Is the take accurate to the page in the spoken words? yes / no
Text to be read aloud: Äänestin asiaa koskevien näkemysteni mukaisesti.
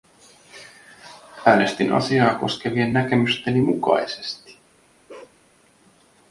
yes